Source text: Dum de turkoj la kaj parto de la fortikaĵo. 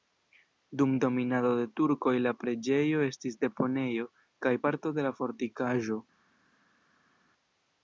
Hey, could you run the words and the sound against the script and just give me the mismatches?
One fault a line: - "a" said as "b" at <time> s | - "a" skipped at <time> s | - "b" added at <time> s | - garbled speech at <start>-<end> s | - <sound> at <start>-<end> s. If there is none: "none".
- "dominado" added at 1.0 s
- "preĝejo estis deponejo" added at 2.4 s